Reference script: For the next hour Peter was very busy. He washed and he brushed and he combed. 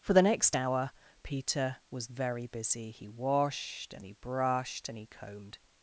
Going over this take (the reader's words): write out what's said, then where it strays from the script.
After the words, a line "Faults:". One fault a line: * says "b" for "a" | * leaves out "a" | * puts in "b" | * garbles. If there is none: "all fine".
For the next hour Peter was very busy. He washed and he brushed and he combed.
Faults:
all fine